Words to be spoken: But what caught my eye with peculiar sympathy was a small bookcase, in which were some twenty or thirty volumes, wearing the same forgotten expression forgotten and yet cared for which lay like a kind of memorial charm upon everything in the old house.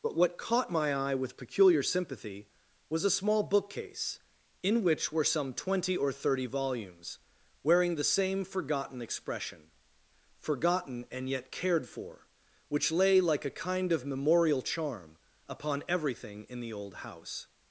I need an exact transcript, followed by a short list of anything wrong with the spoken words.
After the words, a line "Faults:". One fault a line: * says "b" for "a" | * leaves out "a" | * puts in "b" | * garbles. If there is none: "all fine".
But what caught my eye with peculiar sympathy was a small bookcase, in which were some twenty or thirty volumes, wearing the same forgotten expression forgotten and yet cared for which lay like a kind of memorial charm upon everything in the old house.
Faults:
all fine